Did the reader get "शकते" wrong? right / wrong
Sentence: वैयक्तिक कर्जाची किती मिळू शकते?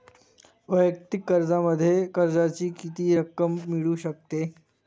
right